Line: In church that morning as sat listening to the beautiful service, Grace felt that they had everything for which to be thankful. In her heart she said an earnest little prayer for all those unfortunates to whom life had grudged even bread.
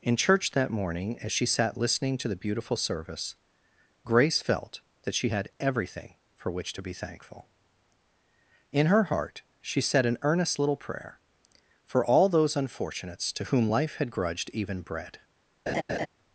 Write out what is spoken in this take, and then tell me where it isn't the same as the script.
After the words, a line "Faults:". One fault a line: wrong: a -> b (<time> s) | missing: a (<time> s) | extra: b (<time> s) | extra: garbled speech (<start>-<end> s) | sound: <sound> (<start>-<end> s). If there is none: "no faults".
In church that morning as she sat listening to the beautiful service, Grace felt that she had everything for which to be thankful. In her heart she said an earnest little prayer for all those unfortunates to whom life had grudged even bread.
Faults:
extra: she (1.3 s)
wrong: they -> she (5.1 s)
sound: laugh (15.7-16.1 s)